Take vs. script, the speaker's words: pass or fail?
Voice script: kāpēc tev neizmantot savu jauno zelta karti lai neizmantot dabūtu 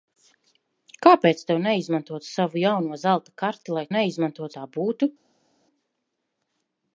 pass